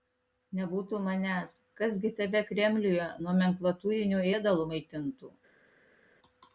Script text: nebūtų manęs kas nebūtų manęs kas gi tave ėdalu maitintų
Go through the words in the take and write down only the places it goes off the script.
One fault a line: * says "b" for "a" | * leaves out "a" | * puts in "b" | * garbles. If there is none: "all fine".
* says "gi tave kremliuje nomenklatūriniu" for "nebūtų manęs kas gi tave"